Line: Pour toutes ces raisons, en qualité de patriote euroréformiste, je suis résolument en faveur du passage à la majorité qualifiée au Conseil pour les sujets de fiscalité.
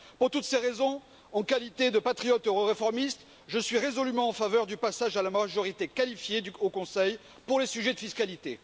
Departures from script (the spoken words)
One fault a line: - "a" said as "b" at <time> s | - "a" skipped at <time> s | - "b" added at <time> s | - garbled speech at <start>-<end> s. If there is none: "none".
none